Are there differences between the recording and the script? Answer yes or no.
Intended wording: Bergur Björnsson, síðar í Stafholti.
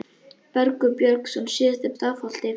no